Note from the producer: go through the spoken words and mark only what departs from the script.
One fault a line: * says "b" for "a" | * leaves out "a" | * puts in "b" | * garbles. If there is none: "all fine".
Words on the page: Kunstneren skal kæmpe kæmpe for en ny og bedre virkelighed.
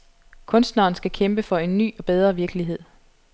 * leaves out "kæmpe"